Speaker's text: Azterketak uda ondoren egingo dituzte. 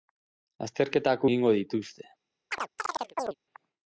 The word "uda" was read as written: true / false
false